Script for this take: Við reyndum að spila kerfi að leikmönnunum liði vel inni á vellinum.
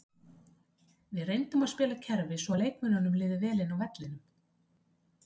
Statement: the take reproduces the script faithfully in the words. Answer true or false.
false